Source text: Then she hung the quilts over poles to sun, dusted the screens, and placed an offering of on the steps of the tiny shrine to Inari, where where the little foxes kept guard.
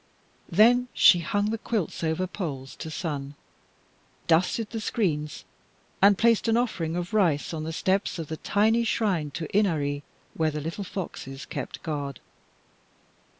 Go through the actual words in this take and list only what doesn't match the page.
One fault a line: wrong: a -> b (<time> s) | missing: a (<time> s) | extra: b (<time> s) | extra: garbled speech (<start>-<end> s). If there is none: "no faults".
extra: rice (7.1 s)
missing: where (10.5 s)